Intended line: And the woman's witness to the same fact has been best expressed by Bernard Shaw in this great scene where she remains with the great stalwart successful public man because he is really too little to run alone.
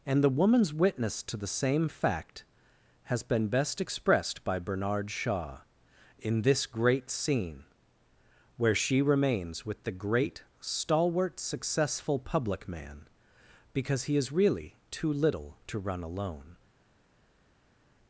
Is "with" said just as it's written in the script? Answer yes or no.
yes